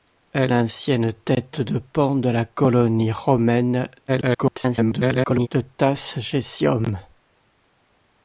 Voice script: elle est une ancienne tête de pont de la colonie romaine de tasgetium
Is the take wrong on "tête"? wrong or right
right